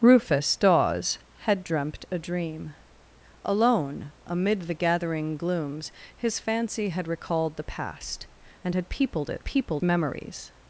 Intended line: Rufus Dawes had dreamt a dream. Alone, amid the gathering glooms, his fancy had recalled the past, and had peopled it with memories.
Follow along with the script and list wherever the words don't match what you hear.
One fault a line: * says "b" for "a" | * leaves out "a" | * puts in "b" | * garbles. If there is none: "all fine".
* says "peopled" for "with"